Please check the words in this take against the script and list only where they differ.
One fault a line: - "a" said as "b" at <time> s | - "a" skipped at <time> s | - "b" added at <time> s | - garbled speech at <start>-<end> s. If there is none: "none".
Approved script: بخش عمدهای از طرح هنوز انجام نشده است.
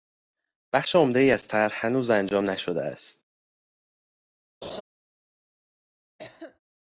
none